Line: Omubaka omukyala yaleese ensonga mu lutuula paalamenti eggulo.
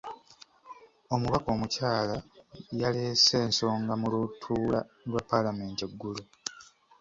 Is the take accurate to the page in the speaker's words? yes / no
no